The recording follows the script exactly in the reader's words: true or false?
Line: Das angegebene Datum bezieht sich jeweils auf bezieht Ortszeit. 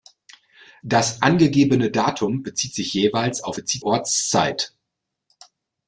true